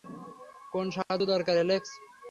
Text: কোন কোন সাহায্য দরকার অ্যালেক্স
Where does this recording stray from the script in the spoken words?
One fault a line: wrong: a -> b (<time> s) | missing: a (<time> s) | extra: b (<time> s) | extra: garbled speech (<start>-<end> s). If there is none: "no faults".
missing: কোন (0.8 s)